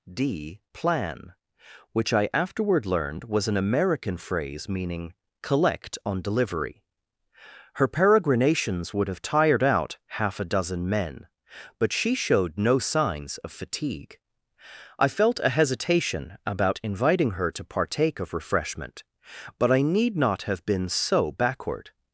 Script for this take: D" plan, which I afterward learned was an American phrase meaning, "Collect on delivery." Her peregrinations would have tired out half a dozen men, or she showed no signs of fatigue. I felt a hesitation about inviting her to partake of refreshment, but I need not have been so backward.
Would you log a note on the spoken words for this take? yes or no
yes